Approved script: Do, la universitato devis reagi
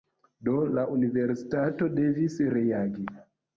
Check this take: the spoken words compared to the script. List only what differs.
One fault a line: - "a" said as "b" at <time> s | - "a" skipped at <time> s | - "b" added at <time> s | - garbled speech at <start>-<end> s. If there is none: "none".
none